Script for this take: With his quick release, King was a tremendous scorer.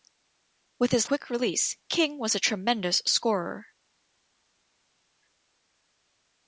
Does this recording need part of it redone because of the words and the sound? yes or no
no